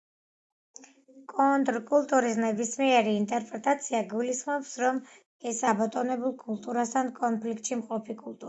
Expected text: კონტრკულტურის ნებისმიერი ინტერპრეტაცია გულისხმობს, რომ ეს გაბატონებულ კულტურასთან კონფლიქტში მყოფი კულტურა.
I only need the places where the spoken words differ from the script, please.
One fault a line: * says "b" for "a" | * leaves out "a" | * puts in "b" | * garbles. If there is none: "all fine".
all fine